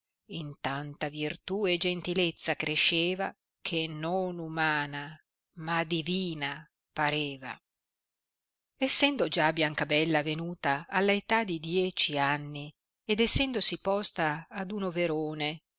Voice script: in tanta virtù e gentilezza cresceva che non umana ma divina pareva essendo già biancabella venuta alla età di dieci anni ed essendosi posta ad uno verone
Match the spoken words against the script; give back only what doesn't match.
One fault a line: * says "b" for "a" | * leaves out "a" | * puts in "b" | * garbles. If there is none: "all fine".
all fine